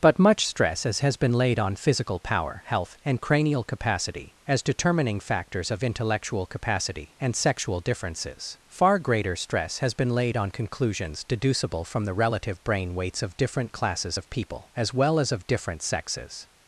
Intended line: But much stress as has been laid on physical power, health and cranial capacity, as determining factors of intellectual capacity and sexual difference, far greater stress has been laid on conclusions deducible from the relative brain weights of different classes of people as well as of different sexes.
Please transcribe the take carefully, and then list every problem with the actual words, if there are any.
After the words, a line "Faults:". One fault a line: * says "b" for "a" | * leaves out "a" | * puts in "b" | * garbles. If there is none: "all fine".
But much stress as has been laid on physical power, health and cranial capacity, as determining factors of intellectual capacity and sexual differences, far greater stress has been laid on conclusions deducible from the relative brain weights of different classes of people as well as of different sexes.
Faults:
* says "differences" for "difference"